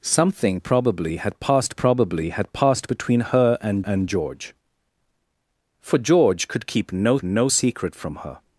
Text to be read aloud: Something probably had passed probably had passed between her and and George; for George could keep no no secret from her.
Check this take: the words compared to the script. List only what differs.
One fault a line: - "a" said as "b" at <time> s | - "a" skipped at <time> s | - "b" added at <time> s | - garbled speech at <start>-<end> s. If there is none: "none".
none